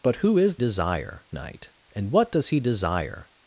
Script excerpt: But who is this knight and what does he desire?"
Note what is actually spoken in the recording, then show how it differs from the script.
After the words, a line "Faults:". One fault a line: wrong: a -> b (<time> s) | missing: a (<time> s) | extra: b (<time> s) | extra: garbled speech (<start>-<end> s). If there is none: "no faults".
But who is desire knight and what does he desire?"
Faults:
wrong: this -> desire (0.5 s)